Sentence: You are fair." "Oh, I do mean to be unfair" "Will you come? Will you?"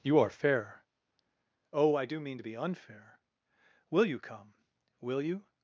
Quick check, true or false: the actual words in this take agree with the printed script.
true